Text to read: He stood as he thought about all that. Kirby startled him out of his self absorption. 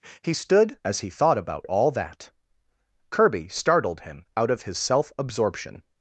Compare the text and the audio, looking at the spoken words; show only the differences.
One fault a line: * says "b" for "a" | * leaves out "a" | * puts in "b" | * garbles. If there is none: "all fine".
all fine